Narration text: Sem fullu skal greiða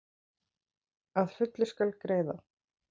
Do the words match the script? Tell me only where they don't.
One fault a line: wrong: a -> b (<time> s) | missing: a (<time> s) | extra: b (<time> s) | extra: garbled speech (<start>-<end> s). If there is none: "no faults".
wrong: Sem -> Að (1.2 s)